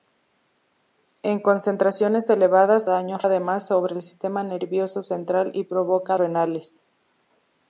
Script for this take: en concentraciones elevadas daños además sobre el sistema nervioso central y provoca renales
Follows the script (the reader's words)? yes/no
yes